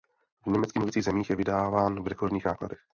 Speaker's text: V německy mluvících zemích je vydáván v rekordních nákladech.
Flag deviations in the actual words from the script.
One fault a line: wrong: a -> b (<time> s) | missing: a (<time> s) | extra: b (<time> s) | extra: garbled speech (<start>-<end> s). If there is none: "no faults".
no faults